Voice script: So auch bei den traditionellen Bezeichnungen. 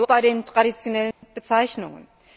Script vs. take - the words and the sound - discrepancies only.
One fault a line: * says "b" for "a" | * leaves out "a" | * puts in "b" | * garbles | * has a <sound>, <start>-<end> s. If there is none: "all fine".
* leaves out "auch"
* has a dropout, 1.1-1.2 s